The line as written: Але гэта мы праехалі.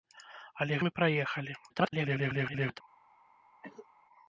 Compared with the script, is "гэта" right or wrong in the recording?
wrong